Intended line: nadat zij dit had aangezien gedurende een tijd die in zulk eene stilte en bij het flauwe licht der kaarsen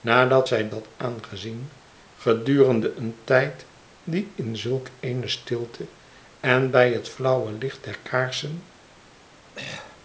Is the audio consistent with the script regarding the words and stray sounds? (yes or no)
no